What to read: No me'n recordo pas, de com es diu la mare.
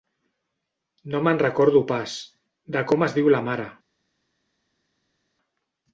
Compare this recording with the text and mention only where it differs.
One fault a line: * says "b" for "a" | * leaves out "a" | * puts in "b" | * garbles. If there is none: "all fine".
all fine